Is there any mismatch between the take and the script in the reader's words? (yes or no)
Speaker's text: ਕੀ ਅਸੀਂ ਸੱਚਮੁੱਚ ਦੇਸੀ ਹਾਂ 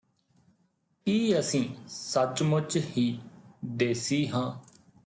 yes